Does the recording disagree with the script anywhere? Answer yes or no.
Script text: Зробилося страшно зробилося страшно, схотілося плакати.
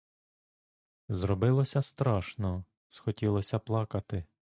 yes